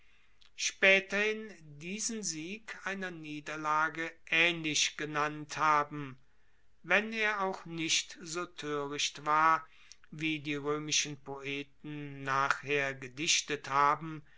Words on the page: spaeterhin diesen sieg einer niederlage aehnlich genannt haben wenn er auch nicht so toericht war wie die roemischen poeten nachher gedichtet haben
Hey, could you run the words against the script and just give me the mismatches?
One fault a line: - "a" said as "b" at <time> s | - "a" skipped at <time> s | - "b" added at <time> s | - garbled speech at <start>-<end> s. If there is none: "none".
none